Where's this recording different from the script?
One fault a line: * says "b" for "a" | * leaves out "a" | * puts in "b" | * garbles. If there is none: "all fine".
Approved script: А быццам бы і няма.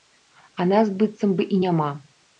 * puts in "нас"